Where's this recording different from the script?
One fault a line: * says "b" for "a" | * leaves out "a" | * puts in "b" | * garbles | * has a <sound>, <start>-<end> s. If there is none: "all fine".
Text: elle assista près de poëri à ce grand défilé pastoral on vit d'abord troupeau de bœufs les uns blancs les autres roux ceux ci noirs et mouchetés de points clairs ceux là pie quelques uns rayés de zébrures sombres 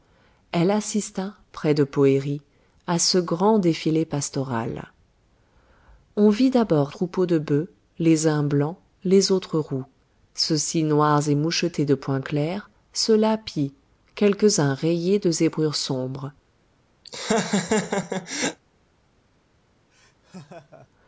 * has a laugh, 17.0-18.6 s
* has a laugh, 19.9-20.9 s